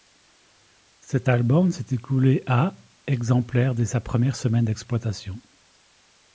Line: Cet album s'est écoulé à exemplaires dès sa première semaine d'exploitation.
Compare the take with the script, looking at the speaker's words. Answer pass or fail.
pass